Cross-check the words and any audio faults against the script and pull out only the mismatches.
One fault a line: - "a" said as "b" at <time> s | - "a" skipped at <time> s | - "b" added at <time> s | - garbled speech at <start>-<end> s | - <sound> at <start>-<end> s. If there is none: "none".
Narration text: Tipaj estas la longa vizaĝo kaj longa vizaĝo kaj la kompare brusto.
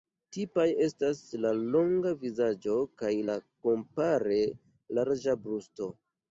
- "longa vizaĝo kaj" skipped at 3.1 s
- "larĝa" added at 5.0 s